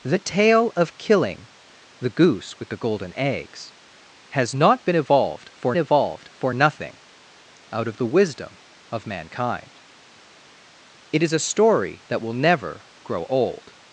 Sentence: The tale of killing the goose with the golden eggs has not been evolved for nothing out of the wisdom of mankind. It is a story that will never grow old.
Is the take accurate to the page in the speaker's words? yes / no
no